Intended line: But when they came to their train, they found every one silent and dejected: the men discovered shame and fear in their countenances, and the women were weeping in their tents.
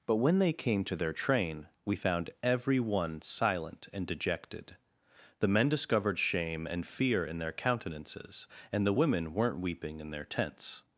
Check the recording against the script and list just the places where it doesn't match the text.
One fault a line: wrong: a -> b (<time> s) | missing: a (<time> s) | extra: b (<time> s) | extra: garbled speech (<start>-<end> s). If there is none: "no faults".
wrong: they -> we (1.9 s)
wrong: were -> weren't (9.3 s)